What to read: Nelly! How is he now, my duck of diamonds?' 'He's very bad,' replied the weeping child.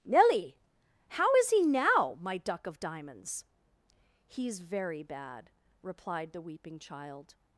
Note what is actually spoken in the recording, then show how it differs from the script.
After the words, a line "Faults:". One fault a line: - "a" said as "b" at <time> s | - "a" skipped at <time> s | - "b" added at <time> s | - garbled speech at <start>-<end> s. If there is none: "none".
Nelly! How is he now, my duck of diamonds?' 'He's very bad,' replied the weeping child.
Faults:
none